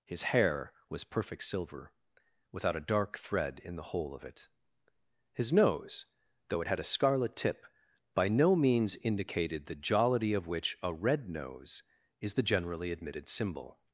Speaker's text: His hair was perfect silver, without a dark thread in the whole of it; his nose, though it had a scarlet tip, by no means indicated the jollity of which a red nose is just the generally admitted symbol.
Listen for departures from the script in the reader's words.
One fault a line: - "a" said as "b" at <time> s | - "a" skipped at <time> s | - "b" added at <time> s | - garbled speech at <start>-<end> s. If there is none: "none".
- "just" skipped at 12.4 s